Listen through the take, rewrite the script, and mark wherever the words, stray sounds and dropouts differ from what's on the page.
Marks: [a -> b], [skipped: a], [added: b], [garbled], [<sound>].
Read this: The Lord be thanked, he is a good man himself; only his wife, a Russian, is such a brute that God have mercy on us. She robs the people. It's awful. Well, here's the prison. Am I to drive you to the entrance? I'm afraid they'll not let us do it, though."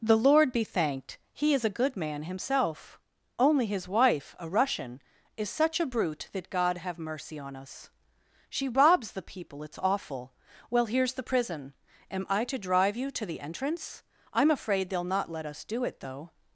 The Lord be thanked, he is a good man himself; only his wife, a Russian, is such a brute that God have mercy on us. She robs the people. It's awful. Well, here's the prison. Am I to drive you to the entrance? I'm afraid they'll not let us do it, though."